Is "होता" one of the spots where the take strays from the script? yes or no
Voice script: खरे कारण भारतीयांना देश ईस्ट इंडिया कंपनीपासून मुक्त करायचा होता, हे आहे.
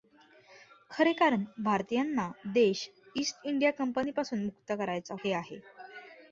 yes